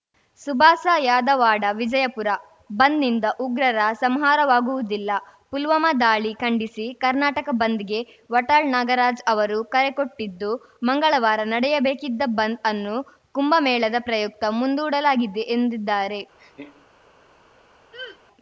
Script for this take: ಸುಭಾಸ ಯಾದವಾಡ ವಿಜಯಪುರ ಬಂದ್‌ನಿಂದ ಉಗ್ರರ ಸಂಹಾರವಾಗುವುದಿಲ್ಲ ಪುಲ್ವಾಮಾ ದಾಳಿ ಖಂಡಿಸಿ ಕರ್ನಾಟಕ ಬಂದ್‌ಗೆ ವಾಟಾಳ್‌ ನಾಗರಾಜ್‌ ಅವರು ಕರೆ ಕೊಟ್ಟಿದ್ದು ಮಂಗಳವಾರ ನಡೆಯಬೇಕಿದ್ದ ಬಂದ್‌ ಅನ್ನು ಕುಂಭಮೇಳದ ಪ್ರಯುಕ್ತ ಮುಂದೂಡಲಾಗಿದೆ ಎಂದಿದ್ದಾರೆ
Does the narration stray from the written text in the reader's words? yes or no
no